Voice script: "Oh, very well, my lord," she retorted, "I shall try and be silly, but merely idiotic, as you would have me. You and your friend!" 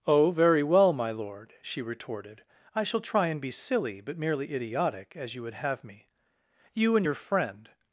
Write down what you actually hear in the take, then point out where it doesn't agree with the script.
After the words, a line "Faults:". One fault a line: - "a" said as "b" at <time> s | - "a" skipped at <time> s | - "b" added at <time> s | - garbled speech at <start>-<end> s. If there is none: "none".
"Oh, very well, my lord," she retorted, "I shall try and be silly, but merely idiotic, as you would have me. You and your friend!"
Faults:
none